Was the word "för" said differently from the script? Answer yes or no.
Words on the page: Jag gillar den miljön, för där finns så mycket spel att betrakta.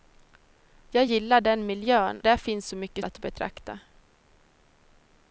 yes